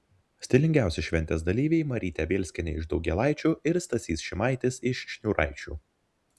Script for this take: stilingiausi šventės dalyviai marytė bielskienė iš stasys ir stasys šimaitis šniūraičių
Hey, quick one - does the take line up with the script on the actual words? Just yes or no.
no